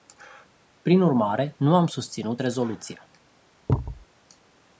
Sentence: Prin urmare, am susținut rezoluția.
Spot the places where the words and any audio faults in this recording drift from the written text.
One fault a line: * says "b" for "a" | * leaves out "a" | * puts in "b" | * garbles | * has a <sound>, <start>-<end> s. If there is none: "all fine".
* puts in "nu"
* has a thud, 3.7-4.1 s